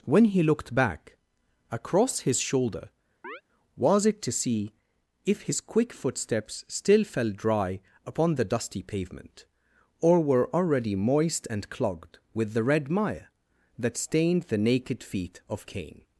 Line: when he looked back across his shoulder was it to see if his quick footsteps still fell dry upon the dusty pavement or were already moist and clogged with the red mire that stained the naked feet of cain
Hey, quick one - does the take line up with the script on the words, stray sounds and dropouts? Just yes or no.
no